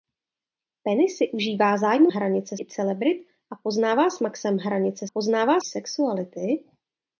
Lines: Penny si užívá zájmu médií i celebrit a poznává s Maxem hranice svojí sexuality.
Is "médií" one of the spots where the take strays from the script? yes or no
yes